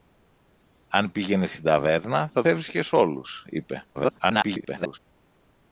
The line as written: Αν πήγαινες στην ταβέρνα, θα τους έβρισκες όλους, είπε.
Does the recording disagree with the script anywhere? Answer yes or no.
yes